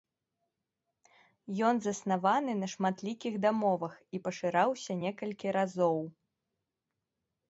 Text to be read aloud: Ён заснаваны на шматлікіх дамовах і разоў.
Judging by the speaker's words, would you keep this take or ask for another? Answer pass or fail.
fail